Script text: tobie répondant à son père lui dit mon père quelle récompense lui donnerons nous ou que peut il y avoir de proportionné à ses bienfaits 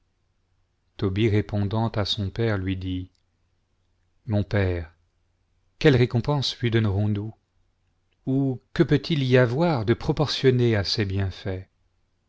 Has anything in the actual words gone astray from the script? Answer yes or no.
no